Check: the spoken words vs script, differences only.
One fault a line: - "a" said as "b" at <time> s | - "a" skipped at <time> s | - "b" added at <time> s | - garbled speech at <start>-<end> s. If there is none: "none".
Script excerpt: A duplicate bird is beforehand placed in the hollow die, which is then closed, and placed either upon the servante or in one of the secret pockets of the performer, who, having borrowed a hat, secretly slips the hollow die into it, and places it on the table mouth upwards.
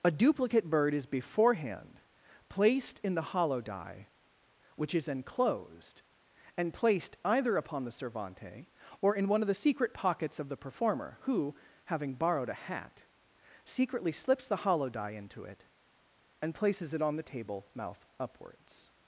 - "then closed" said as "enclosed" at 5.1 s